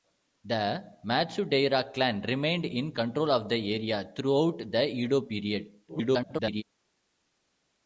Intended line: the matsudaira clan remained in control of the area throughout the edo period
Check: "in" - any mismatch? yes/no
no